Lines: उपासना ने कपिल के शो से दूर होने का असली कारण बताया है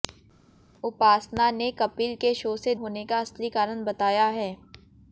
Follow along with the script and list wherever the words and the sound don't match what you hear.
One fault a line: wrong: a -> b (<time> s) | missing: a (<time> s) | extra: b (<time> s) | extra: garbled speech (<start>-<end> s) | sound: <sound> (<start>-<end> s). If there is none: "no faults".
missing: दूर (2.7 s)